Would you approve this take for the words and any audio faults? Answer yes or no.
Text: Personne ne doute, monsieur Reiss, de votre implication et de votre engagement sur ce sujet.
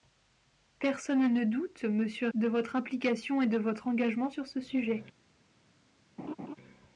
no